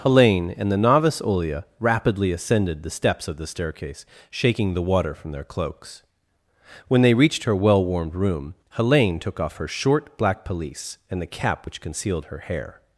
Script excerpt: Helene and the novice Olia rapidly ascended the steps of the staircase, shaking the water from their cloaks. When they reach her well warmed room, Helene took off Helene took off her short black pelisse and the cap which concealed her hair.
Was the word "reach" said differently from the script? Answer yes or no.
yes